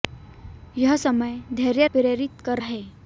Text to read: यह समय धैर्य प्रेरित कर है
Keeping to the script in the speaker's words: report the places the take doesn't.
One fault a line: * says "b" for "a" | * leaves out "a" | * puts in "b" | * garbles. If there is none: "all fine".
all fine